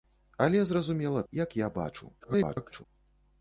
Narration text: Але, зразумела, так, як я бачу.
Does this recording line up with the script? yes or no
no